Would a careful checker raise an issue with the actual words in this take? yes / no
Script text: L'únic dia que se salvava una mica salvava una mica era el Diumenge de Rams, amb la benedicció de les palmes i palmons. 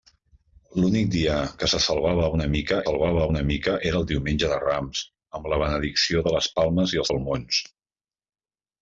no